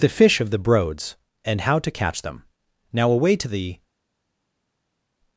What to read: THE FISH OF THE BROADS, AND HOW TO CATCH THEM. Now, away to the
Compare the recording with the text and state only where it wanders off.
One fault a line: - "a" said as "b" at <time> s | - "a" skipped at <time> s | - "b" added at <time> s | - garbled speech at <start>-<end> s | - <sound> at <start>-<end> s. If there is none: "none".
none